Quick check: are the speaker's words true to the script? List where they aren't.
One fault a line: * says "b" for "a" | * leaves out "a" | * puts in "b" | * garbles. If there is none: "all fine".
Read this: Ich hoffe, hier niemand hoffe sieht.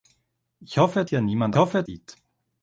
all fine